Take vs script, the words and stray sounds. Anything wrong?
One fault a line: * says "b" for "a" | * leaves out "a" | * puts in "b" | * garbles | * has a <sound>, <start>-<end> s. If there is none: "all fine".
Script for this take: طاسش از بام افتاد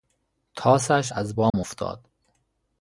* has a dropout, 1.5-1.5 s